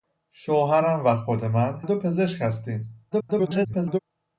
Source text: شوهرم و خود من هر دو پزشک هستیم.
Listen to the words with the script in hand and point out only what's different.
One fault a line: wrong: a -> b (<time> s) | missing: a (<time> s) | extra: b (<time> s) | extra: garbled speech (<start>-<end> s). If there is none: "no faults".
missing: هر (1.8 s)
extra: garbled speech (3.1-4.0 s)